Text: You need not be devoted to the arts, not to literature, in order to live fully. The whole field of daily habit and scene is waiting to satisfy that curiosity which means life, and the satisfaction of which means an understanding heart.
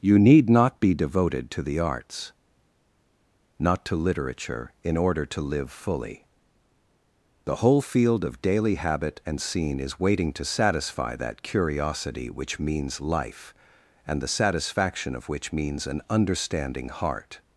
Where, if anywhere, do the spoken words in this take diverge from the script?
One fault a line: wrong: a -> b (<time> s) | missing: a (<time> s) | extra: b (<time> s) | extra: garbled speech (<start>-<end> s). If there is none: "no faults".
no faults